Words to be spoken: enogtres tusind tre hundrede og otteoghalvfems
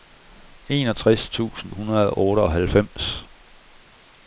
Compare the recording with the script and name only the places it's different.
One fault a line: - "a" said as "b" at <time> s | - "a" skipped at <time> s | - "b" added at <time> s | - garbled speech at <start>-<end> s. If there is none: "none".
- "tre" skipped at 1.7 s